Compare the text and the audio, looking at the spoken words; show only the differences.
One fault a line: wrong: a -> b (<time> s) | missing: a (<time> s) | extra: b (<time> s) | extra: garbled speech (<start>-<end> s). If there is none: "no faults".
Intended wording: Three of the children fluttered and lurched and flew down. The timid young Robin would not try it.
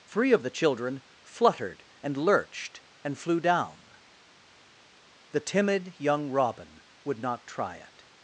no faults